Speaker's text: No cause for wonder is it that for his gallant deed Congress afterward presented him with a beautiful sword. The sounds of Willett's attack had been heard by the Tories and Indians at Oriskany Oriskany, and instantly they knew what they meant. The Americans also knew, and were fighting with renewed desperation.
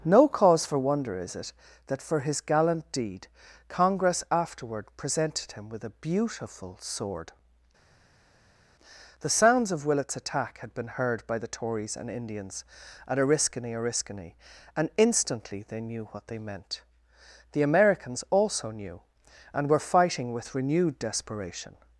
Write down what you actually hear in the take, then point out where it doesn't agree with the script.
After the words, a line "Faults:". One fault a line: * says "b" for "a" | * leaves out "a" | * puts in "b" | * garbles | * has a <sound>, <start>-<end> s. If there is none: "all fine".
No cause for wonder is it that for his gallant deed Congress afterward presented him with a beautiful sword. The sounds of Willett's attack had been heard by the Tories and Indians at Oriskany Oriskany, and instantly they knew what they meant. The Americans also knew, and were fighting with renewed desperation.
Faults:
all fine